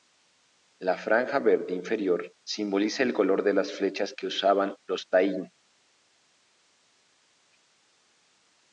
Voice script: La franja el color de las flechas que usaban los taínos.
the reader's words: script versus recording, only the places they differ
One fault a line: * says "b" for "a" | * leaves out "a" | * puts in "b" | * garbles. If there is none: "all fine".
* puts in "verde inferior simboliza"